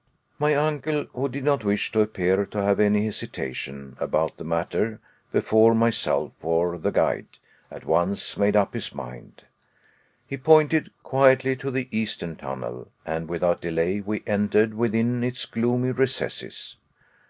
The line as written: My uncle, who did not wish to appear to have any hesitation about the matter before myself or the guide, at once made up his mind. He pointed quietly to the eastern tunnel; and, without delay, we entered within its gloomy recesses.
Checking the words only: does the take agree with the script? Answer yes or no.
yes